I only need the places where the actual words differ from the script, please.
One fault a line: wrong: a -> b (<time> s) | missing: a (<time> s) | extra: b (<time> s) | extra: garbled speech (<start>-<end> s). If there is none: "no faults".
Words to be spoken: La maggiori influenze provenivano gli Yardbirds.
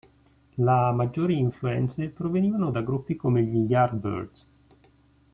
extra: da gruppi come (2.7 s)